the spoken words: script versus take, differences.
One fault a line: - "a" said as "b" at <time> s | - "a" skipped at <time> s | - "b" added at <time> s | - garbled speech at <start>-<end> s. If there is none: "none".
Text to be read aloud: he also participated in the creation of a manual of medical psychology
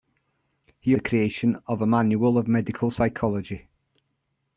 - "also participated in" skipped at 0.9 s